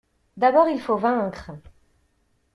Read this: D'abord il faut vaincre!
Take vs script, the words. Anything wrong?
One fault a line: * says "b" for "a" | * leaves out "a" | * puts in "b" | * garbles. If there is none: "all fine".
all fine